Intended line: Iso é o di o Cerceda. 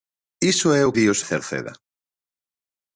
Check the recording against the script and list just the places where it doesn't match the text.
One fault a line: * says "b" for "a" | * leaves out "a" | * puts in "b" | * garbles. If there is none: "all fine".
all fine